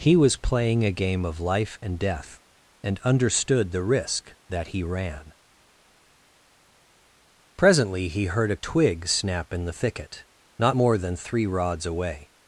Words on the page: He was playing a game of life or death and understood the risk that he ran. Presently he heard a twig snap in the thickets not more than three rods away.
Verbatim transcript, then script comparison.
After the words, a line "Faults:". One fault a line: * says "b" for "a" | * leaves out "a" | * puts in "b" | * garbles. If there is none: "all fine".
He was playing a game of life and death and understood the risk that he ran. Presently he heard a twig snap in the thicket not more than three rods away.
Faults:
* says "and" for "or"
* says "thicket" for "thickets"